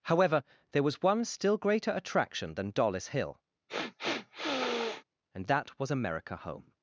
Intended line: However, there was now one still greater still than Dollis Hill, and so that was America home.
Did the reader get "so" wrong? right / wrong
wrong